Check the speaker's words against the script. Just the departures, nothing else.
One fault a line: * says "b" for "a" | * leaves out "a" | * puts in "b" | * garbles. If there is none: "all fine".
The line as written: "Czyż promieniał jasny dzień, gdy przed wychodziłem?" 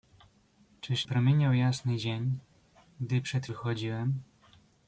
all fine